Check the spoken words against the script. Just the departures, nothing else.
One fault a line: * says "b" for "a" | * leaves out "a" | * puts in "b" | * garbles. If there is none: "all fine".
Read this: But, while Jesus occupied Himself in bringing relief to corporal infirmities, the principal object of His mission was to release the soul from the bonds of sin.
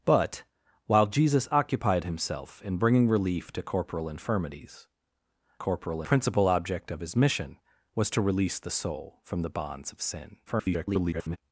* says "corporal" for "the"
* garbles